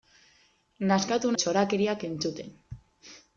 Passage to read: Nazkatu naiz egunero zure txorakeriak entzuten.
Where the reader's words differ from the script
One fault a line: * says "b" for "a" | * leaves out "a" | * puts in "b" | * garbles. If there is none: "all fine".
* leaves out "naiz egunero zure"